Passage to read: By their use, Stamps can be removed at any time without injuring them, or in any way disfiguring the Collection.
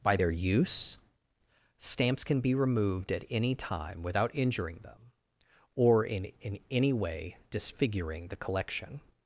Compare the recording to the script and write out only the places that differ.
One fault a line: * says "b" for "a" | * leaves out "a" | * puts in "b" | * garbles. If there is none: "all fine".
* puts in "in"